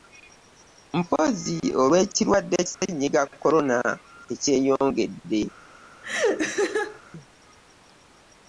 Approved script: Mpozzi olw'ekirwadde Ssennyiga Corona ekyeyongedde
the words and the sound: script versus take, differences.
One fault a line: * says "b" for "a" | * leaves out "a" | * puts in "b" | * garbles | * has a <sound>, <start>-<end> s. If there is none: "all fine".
* has a dropout, 2.7-2.8 s
* has a laugh, 6.0-7.0 s